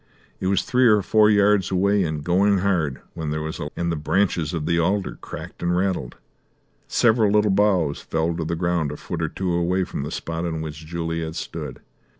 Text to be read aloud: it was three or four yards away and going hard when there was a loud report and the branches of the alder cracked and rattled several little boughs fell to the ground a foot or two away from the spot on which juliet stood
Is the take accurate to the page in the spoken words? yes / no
no